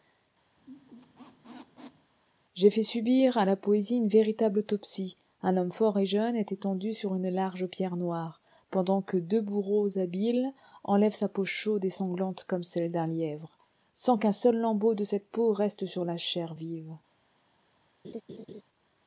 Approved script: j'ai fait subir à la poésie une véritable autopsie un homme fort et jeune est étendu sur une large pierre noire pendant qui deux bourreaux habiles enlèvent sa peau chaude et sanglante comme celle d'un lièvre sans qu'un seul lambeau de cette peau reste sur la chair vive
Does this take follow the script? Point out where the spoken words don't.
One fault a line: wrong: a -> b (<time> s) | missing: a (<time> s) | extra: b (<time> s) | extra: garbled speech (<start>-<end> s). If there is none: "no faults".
wrong: qui -> que (9.0 s)